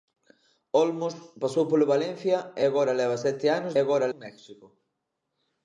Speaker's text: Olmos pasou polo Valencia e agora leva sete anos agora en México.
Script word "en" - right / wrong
right